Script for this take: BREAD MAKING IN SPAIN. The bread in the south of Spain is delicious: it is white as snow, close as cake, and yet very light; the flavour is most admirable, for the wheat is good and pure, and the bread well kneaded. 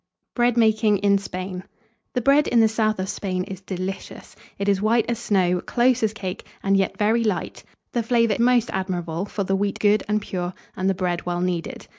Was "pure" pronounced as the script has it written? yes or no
yes